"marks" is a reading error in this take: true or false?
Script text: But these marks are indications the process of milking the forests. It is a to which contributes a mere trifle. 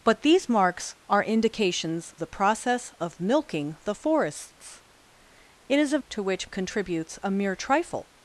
false